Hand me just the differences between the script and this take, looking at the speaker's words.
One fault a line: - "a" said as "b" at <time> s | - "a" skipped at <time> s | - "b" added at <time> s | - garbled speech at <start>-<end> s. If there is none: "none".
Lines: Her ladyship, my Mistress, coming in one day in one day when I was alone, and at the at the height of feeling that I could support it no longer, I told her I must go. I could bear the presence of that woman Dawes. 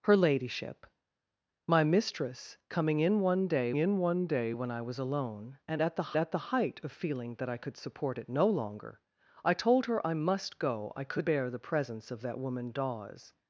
none